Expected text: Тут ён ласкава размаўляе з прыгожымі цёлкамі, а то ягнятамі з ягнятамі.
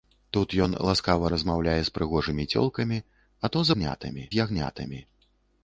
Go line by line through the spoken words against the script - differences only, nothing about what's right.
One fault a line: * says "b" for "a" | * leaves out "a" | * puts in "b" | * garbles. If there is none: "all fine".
all fine